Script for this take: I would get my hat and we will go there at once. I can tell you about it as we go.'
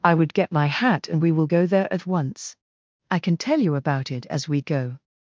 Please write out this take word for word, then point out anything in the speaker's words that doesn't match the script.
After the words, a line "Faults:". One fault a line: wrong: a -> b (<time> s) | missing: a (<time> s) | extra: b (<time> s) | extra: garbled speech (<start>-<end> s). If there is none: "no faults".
I would get my hat and we will go there at once. I can tell you about it as we go.'
Faults:
no faults